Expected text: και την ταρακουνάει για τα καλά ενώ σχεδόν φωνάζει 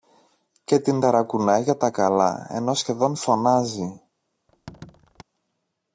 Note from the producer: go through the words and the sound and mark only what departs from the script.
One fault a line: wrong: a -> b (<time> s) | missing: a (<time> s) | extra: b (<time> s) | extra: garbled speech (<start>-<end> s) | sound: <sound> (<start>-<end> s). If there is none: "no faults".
sound: squeak (4.5-5.2 s)